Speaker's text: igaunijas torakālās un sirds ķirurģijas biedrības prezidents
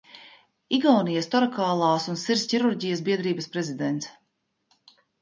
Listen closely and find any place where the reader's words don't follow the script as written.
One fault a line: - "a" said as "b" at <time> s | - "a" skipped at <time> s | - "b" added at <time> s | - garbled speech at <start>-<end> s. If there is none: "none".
none